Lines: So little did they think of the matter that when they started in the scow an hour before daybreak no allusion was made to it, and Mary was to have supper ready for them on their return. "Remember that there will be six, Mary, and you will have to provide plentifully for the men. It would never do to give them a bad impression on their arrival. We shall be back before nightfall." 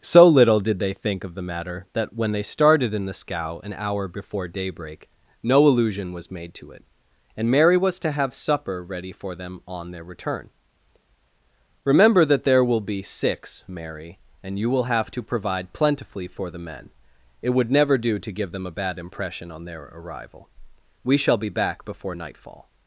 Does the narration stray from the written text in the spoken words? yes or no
no